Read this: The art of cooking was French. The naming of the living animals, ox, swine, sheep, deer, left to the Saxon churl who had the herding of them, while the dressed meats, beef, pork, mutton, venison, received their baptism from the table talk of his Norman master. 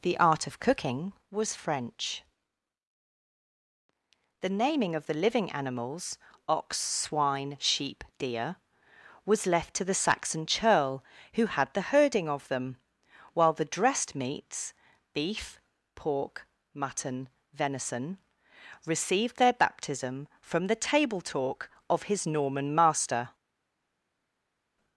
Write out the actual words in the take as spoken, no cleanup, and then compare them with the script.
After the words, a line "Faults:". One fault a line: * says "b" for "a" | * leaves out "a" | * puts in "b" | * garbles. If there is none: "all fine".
The art of cooking was French. The naming of the living animals, ox, swine, sheep, deer, was left to the Saxon churl who had the herding of them, while the dressed meats, beef, pork, mutton, venison, received their baptism from the table talk of his Norman master.
Faults:
* puts in "was"